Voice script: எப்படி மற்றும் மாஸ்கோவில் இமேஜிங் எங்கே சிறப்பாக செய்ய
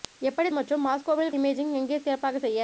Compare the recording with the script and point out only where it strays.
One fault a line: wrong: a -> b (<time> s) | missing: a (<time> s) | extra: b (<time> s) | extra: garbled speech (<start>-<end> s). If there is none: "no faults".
no faults